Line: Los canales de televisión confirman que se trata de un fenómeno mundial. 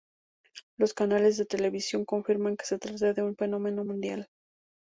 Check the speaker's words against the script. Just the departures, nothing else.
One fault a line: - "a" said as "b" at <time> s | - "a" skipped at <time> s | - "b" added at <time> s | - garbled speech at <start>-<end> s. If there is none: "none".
none